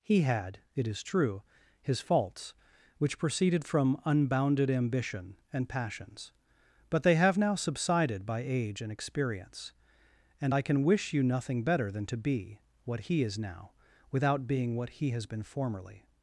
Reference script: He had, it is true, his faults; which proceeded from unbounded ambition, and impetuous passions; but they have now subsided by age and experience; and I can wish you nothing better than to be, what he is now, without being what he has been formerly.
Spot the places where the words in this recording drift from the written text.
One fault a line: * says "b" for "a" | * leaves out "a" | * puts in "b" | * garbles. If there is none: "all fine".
* leaves out "impetuous"